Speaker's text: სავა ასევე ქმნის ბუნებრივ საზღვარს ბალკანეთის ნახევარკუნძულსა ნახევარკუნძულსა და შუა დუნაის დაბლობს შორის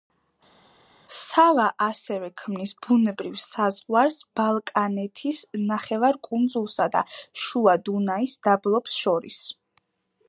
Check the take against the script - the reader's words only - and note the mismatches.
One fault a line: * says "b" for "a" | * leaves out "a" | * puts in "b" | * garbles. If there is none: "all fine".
* leaves out "ნახევარკუნძულსა"